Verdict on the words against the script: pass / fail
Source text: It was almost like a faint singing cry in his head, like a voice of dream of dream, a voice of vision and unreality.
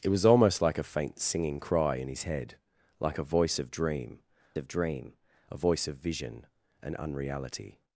pass